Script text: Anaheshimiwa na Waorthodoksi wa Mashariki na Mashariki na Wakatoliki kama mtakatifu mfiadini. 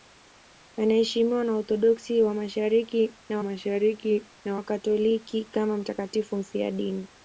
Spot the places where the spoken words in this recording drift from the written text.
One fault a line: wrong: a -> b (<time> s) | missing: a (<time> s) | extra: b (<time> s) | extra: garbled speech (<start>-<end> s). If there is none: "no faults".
no faults